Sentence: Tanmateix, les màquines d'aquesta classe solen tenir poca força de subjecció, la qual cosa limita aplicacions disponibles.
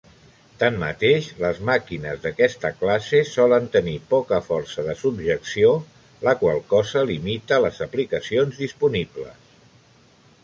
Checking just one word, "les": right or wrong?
right